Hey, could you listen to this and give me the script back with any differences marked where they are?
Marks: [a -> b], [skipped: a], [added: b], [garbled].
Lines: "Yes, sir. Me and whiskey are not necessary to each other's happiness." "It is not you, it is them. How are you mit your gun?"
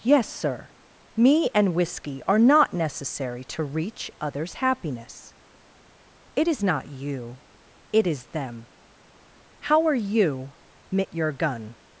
"Yes, sir. Me and whiskey are not necessary to [each -> reach] other's happiness." "It is not you, it is them. How are you mit your gun?"